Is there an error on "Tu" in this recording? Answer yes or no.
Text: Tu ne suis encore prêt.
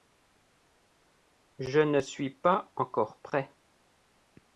yes